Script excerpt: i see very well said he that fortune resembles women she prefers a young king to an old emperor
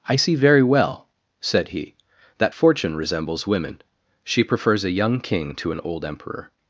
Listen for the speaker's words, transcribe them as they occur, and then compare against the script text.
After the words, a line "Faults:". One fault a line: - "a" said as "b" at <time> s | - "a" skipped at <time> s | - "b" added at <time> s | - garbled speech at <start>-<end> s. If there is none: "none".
i see very well said he that fortune resembles women she prefers a young king to an old emperor
Faults:
none